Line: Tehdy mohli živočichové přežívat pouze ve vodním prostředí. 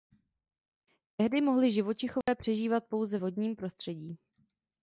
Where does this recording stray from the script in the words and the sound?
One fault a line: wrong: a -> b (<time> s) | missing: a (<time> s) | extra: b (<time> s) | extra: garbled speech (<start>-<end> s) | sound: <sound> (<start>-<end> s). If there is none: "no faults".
sound: dropout (2.2-2.3 s)
missing: ve (3.2 s)